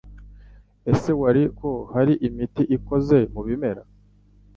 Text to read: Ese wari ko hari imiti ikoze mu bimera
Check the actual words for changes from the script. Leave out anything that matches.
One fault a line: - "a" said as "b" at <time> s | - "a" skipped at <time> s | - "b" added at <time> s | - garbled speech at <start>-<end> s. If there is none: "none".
none